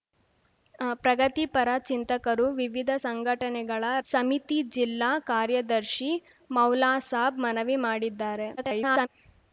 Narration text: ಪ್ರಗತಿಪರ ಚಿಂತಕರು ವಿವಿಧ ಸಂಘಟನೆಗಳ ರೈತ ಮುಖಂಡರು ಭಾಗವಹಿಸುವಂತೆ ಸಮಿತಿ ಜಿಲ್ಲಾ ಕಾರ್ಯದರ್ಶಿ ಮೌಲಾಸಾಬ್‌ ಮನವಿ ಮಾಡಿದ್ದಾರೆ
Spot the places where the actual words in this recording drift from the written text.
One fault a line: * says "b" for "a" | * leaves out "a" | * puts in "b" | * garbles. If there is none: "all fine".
* leaves out "ರೈತ ಮುಖಂಡರು ಭಾಗವಹಿಸುವಂತೆ"
* garbles